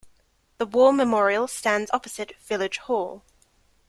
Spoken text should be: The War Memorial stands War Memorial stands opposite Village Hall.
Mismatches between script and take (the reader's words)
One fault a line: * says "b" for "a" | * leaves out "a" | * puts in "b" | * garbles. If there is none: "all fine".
* leaves out "War Memorial stands"